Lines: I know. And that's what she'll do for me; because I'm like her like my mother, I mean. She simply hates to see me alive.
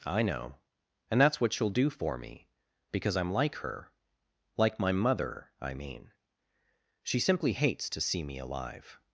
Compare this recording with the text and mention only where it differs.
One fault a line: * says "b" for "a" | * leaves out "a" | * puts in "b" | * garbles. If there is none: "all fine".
all fine